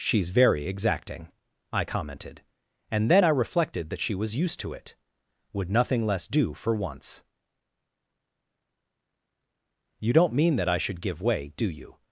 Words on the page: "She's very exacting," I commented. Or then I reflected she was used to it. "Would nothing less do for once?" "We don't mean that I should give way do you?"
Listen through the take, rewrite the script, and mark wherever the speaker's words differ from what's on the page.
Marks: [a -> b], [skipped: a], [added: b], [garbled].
"She's very exacting," I commented. [Or -> And] then I reflected [added: that] she was used to it. "Would nothing less do for once?" ["We -> You] don't mean that I should give way do you?"